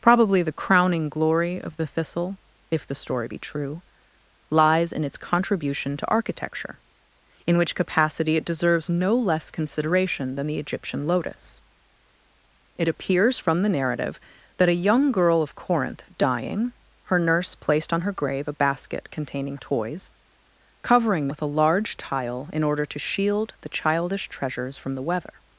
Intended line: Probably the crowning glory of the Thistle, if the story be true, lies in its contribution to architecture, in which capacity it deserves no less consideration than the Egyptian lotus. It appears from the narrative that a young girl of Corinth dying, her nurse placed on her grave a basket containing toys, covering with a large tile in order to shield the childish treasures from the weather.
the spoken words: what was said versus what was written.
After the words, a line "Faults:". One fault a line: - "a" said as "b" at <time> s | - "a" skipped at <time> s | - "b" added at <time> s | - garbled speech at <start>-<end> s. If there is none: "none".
Probably the crowning glory of the Thistle, if the story be true, lies in its contribution to architecture, in which capacity it deserves no less consideration than the Egyptian lotus. It appears from the narrative that a young girl of Corinth dying, her nurse placed on her grave a basket containing toys, covering with a large tile in order to shield the childish treasures from the weather.
Faults:
none